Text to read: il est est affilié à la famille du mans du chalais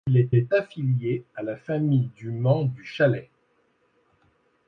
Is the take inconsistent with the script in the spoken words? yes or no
no